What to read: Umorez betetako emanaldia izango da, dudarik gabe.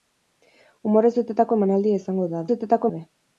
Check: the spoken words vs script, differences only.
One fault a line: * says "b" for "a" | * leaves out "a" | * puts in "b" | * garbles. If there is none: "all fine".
* says "betetako" for "dudarik"